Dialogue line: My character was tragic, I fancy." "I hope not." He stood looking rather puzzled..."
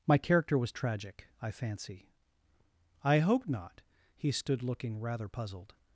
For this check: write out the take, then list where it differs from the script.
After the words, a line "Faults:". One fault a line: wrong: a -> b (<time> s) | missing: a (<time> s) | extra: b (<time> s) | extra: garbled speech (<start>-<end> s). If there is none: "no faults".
My character was tragic, I fancy." "I hope not." He stood looking rather puzzled..."
Faults:
no faults